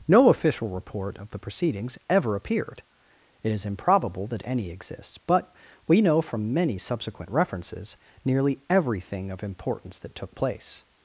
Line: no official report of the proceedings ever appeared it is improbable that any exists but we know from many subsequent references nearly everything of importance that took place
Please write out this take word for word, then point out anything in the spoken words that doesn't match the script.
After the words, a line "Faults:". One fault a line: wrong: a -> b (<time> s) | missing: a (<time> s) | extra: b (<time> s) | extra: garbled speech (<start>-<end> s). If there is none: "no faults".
no official report of the proceedings ever appeared it is improbable that any exists but we know from many subsequent references nearly everything of importance that took place
Faults:
no faults